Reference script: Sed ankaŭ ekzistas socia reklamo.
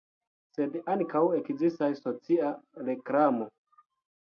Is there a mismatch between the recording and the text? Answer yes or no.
no